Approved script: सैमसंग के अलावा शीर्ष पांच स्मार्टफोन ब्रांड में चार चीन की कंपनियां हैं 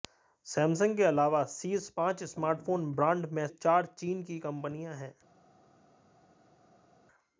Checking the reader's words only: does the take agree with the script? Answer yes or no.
yes